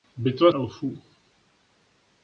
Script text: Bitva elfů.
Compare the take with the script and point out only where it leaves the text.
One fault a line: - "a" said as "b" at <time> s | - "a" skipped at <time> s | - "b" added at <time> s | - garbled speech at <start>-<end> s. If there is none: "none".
none